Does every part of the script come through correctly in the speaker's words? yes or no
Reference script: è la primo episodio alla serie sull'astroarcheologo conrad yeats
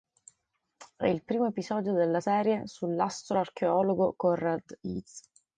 no